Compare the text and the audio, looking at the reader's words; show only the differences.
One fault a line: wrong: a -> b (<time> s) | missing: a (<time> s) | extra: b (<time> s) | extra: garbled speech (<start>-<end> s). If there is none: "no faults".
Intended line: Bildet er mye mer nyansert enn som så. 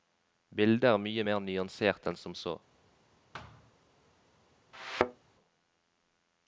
no faults